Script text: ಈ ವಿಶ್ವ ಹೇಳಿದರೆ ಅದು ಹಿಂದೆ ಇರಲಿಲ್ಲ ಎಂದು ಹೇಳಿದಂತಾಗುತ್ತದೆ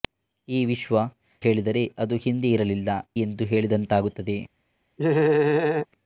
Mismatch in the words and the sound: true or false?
true